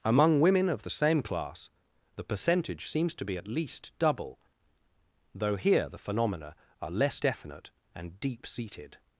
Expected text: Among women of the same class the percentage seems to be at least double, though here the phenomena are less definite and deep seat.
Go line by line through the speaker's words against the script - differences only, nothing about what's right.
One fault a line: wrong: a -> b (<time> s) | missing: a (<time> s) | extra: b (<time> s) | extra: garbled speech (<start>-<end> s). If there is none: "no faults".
wrong: seat -> seated (8.5 s)